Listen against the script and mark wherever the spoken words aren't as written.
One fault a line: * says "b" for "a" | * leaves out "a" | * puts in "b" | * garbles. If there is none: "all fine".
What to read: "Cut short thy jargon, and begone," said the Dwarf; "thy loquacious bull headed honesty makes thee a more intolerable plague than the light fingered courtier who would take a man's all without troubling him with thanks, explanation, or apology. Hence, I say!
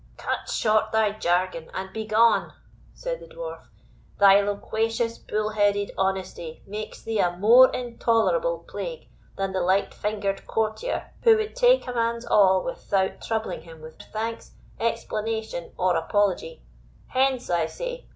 all fine